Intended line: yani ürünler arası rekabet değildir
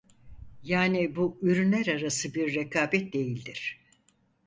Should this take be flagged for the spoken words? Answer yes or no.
yes